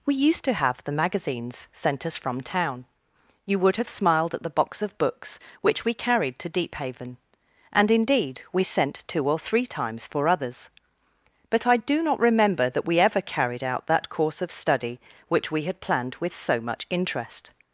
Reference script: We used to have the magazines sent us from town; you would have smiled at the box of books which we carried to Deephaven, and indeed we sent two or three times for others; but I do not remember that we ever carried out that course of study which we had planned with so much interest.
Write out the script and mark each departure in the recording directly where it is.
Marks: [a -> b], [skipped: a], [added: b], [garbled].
We used to have the magazines sent us from town; you would have smiled at the box of books which we carried to Deephaven, and indeed we sent two or three times for others; but I do not remember that we ever carried out that course of study which we had planned with so much interest.